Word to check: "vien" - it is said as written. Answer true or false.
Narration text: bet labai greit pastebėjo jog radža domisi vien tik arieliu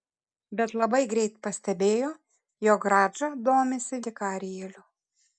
false